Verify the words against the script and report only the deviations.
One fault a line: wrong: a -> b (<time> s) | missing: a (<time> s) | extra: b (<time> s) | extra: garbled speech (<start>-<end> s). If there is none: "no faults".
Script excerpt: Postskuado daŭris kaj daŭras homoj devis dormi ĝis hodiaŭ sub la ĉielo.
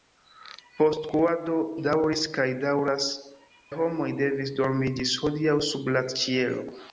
no faults